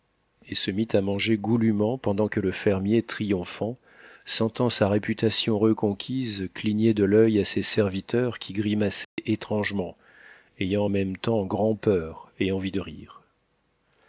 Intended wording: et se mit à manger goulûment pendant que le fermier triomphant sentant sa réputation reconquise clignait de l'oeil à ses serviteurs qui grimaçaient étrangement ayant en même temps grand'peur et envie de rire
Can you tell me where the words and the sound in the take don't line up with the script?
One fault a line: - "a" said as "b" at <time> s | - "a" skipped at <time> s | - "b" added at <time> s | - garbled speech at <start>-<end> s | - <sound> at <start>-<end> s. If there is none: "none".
- dropout at 9.0-9.2 s